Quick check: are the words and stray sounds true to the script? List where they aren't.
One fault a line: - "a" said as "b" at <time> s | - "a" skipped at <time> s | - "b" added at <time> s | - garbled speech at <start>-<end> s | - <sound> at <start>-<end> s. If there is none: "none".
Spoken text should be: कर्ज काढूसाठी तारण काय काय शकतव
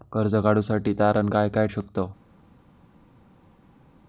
none